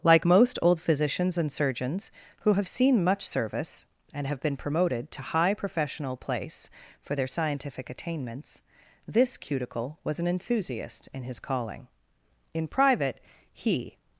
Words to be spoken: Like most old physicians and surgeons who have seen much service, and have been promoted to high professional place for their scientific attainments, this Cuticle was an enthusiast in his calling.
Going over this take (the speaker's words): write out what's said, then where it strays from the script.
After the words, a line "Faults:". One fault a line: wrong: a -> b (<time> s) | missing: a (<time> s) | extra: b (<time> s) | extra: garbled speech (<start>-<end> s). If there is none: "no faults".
Like most old physicians and surgeons who have seen much service, and have been promoted to high professional place for their scientific attainments, this Cuticle was an enthusiast in his calling. In private, he
Faults:
extra: In private he (12.5 s)